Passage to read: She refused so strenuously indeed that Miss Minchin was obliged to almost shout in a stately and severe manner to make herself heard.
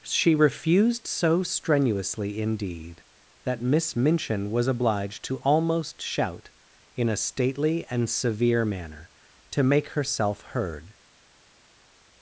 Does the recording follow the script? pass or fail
pass